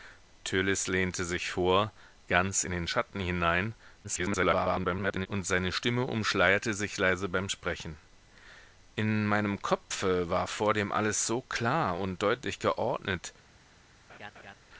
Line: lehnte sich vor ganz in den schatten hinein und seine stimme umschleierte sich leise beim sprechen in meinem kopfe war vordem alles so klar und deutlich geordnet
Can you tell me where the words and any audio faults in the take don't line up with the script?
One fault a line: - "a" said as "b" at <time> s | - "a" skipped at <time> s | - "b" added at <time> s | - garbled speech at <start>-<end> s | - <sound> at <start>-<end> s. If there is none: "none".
- garbled speech at 4.0-5.3 s
- laugh at 14.1-14.5 s